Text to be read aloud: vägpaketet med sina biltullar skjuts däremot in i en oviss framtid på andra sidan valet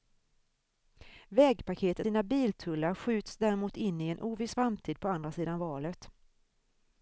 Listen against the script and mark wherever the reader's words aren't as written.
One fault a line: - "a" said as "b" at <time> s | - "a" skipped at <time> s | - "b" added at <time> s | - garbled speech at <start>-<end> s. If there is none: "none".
- "med" skipped at 2.1 s